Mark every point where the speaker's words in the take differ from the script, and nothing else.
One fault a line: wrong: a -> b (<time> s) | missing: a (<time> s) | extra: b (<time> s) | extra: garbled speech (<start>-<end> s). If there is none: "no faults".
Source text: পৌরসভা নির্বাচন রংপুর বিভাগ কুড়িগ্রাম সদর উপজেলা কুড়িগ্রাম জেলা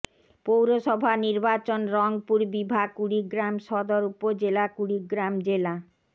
no faults